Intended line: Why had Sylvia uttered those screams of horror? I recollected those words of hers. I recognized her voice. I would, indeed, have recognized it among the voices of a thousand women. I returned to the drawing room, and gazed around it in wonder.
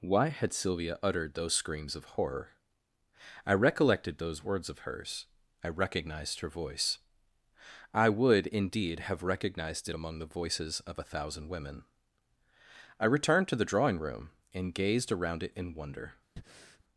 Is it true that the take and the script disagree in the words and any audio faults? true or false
true